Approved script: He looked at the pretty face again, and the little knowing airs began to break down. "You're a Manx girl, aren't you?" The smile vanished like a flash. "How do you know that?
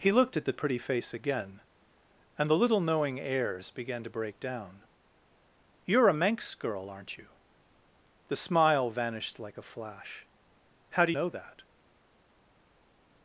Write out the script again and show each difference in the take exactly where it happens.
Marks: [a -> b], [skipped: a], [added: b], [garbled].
He looked at the pretty face again, and the little knowing airs began to break down. "You're a Manx girl, aren't you?" The smile vanished like a flash. "How do [skipped: you] know that?